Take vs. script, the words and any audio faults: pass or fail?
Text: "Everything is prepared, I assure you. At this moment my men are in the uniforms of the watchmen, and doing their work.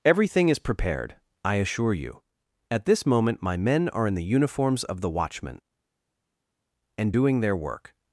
pass